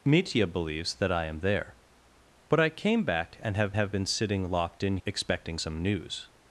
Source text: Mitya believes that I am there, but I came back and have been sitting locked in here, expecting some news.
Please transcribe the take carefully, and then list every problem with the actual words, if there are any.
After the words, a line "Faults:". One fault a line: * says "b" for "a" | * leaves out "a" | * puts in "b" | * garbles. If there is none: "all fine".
Mitya believes that I am there, but I came back and have have been sitting locked in expecting some news.
Faults:
* puts in "have"
* leaves out "here"